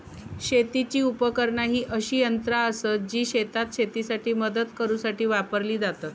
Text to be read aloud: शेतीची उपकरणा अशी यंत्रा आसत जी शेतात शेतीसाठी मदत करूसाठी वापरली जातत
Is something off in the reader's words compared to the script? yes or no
yes